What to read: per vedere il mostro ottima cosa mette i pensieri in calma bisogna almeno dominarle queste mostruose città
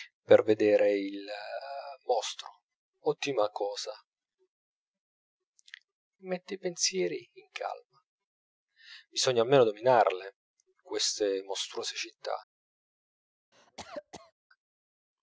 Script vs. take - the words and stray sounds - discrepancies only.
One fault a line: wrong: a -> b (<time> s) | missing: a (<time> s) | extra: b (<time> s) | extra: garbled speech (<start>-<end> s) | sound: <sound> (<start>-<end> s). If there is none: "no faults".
sound: cough (13.5-14.3 s)